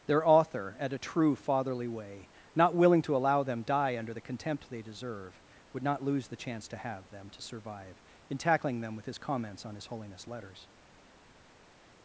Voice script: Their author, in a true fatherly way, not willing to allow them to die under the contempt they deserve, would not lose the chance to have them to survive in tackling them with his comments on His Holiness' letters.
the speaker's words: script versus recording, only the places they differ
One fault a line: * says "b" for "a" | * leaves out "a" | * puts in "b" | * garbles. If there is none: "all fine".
* says "at" for "in"
* leaves out "to"